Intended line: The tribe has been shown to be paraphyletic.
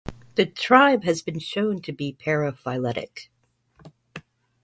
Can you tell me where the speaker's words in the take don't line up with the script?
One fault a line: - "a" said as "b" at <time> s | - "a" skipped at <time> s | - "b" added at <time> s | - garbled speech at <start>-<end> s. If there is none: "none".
none